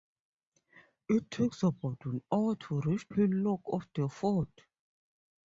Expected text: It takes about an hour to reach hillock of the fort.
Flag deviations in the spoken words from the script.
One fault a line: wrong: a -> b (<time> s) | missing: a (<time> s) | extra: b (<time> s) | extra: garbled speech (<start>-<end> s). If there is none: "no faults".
no faults